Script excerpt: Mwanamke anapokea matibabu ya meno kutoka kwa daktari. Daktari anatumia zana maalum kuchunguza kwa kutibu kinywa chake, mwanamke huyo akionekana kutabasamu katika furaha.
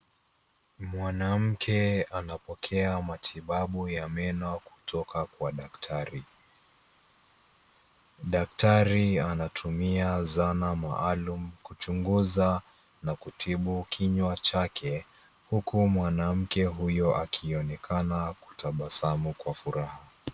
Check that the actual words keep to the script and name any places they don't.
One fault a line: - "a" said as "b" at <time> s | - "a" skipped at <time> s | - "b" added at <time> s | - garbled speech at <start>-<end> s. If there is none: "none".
- "kwa" said as "na" at 13.0 s
- "huku" added at 15.5 s
- "katika" said as "kwa" at 19.3 s